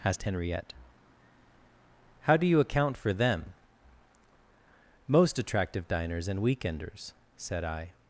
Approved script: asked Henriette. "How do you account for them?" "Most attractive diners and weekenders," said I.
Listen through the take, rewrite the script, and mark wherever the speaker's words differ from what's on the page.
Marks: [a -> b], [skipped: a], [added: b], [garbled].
asked Henriette. "How do you account for them?" "Most attractive diners and weekenders," said I.